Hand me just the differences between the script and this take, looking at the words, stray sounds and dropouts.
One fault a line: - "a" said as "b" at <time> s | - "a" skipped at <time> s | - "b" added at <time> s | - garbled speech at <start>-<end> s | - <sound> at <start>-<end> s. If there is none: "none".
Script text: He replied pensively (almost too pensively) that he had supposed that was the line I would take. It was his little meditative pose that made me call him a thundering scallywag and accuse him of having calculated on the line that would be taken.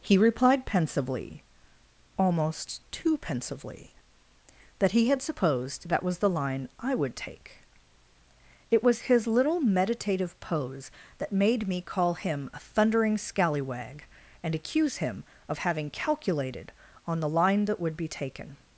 none